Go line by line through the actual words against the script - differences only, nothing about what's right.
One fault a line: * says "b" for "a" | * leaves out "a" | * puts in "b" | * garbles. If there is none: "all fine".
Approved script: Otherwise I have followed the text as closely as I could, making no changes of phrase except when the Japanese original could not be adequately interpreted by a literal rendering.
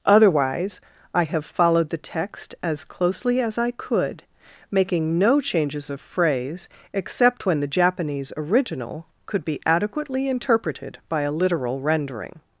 * leaves out "not"